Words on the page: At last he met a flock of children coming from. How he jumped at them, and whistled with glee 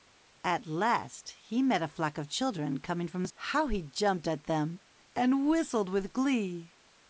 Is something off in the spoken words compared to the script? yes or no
no